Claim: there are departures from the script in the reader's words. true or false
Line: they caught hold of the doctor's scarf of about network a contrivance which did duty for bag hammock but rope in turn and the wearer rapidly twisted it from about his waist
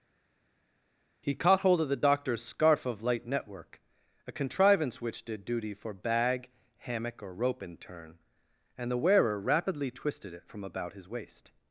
true